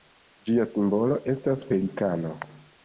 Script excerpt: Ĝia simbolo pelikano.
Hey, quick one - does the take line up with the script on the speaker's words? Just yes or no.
no